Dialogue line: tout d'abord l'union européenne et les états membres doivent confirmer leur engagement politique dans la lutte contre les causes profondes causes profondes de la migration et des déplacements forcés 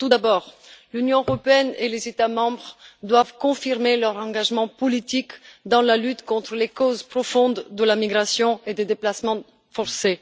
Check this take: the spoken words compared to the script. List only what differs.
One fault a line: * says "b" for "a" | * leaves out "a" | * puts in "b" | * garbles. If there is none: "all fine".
* leaves out "causes profondes"